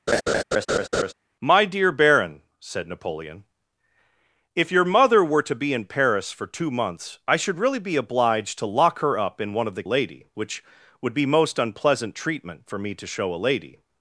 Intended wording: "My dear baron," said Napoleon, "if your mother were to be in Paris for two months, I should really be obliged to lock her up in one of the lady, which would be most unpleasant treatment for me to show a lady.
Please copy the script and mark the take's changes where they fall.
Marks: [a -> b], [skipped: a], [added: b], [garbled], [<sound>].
[laugh] "My dear baron," said Napoleon, "if your mother were to be in Paris for two months, I should really be obliged to lock her up in one of the lady, which would be most unpleasant treatment for me to show a lady.